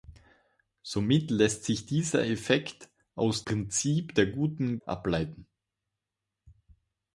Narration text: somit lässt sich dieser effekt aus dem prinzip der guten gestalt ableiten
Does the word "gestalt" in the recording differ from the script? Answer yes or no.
yes